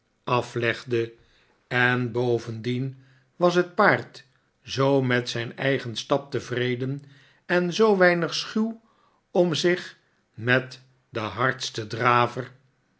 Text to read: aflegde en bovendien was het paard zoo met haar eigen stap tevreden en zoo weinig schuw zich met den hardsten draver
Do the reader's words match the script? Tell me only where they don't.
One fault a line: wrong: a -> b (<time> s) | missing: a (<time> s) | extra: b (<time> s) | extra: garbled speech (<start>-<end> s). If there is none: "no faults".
wrong: haar -> zijn (5.3 s)
extra: om (9.3 s)